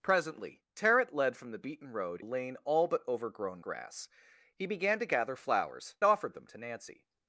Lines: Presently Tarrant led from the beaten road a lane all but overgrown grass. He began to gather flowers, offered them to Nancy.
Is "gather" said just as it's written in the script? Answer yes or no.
yes